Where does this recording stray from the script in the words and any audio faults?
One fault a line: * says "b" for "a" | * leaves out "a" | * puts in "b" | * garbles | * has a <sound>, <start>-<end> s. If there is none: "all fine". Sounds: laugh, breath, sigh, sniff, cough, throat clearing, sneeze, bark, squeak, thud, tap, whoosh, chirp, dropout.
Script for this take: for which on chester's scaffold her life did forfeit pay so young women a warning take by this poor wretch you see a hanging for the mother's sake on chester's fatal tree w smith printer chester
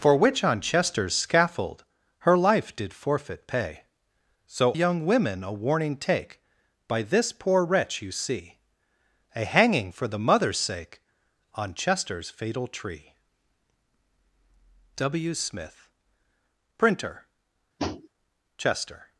* has a tap, 17.8-18.1 s